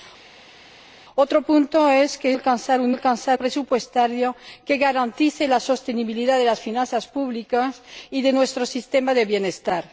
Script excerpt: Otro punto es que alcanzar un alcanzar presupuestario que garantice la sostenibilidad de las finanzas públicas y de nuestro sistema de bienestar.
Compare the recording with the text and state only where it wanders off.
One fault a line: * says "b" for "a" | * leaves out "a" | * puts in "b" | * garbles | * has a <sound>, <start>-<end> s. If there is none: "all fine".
all fine